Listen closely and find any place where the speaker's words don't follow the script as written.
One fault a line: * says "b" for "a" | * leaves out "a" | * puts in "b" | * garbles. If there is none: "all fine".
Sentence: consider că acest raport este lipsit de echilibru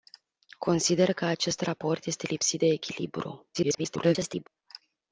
* garbles